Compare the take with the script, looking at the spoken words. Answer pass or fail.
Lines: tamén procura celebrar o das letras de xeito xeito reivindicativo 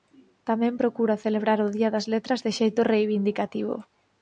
fail